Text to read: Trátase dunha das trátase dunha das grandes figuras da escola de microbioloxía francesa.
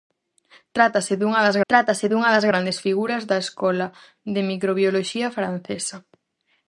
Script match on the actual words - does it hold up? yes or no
yes